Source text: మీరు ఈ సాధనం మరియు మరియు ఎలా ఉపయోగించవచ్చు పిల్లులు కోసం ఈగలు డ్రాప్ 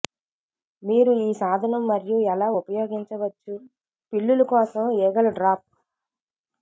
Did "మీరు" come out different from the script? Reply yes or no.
no